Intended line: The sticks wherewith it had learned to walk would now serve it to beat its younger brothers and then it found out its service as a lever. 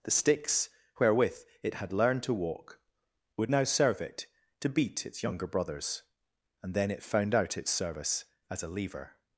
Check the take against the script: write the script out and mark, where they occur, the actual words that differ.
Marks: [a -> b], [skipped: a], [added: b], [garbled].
The sticks wherewith it had learned to walk would now serve it to beat its younger brothers and then it found out its service as a lever.